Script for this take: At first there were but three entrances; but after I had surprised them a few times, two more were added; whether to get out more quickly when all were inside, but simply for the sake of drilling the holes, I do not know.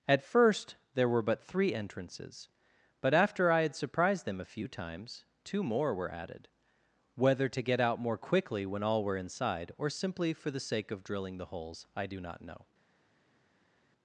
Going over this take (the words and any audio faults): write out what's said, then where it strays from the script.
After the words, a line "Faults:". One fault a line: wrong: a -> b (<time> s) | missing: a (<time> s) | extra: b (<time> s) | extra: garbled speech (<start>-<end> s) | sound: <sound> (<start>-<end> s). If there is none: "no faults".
At first there were but three entrances; but after I had surprised them a few times, two more were added; whether to get out more quickly when all were inside, or simply for the sake of drilling the holes, I do not know.
Faults:
wrong: but -> or (9.8 s)